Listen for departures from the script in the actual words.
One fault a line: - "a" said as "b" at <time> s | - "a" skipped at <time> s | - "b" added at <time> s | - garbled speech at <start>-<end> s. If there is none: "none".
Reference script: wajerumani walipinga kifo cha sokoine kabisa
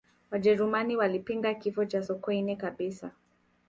none